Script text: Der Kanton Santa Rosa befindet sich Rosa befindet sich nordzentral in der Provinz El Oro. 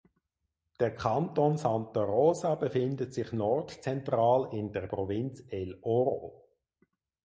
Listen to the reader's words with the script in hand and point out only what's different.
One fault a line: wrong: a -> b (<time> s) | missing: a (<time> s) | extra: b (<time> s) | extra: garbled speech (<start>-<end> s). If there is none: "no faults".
missing: Rosa befindet sich (3.3 s)